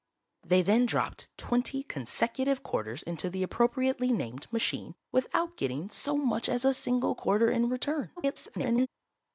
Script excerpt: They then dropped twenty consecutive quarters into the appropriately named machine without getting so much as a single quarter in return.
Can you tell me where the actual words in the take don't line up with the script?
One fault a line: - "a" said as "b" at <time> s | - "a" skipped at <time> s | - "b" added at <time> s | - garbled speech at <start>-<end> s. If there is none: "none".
- garbled speech at 8.2-8.9 s